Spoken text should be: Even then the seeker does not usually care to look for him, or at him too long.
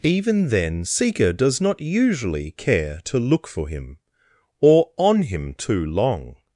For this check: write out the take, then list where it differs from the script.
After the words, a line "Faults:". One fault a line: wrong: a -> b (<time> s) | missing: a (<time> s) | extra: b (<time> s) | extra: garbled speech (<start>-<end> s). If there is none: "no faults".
Even then seeker does not usually care to look for him, or on him too long.
Faults:
missing: the (0.8 s)
wrong: at -> on (5.0 s)